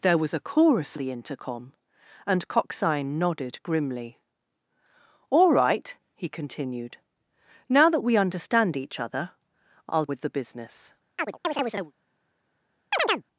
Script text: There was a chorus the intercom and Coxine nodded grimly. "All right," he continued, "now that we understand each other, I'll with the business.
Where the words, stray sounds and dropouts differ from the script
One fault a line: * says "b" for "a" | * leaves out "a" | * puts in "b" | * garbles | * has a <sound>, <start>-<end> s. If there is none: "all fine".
* has a chirp, 11.2-11.9 s
* has a chirp, 12.9-13.2 s